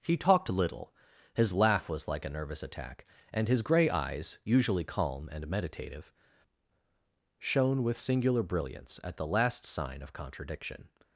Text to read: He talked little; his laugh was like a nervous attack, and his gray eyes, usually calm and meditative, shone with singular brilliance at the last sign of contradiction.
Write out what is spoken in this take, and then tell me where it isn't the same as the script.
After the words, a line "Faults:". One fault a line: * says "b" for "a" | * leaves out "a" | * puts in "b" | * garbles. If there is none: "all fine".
He talked little; his laugh was like a nervous attack, and his gray eyes, usually calm and meditative, shone with singular brilliance at the last sign of contradiction.
Faults:
all fine